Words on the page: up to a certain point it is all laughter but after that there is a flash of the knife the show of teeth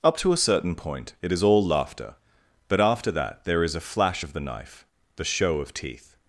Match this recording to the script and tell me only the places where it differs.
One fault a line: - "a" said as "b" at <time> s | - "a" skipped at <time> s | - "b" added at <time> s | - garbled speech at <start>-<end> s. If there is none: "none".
none